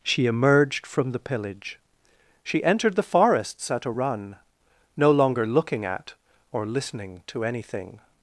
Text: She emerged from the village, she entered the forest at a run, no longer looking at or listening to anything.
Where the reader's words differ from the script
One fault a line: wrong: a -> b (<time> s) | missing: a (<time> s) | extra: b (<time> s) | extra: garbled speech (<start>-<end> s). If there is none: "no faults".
wrong: village -> pillage (1.2 s)
wrong: forest -> forests (3.0 s)